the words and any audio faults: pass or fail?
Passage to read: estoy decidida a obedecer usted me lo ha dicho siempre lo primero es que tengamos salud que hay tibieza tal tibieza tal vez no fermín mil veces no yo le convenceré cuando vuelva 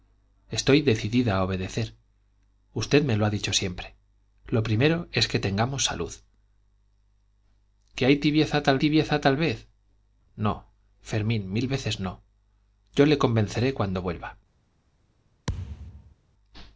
fail